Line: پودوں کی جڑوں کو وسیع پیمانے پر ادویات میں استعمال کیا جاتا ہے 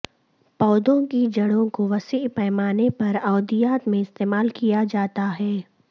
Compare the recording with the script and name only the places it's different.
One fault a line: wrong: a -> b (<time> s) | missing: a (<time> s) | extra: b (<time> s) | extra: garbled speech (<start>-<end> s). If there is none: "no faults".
no faults